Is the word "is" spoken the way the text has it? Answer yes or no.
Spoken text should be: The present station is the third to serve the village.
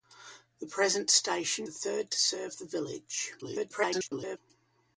no